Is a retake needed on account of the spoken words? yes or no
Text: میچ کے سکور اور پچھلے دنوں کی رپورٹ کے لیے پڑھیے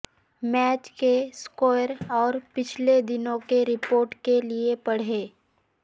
no